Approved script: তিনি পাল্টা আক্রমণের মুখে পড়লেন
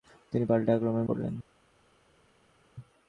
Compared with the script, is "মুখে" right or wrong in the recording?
wrong